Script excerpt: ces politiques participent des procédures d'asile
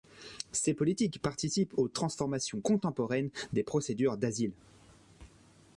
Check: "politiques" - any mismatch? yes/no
no